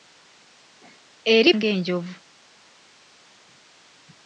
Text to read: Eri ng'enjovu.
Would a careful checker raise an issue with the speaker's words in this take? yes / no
no